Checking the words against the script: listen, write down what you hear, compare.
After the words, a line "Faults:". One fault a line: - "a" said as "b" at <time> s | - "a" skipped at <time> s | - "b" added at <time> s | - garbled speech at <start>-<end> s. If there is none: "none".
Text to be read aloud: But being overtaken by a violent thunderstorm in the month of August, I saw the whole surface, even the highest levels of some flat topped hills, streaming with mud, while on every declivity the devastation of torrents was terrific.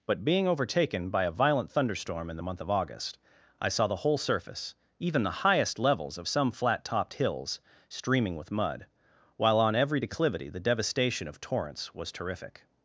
But being overtaken by a violent thunderstorm in the month of August, I saw the whole surface, even the highest levels of some flat topped hills, streaming with mud, while on every declivity the devastation of torrents was terrific.
Faults:
none